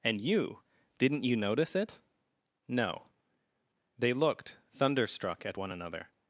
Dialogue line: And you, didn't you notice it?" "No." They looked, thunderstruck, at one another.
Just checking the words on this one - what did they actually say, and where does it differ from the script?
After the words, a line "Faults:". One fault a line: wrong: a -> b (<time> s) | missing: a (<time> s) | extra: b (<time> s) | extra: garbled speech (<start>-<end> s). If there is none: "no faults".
And you, didn't you notice it?" "No." They looked, thunderstruck, at one another.
Faults:
no faults